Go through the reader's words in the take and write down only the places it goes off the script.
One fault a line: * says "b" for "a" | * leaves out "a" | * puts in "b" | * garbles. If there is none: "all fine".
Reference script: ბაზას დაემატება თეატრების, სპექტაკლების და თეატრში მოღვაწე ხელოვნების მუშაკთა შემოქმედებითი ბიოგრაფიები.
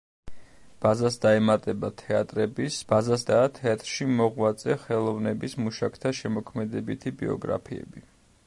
* says "ბაზას" for "სპექტაკლების"